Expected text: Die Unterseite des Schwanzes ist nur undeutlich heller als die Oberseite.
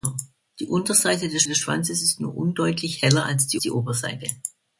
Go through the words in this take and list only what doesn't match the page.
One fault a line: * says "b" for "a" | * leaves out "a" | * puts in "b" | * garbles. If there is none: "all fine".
* puts in "des"
* puts in "die"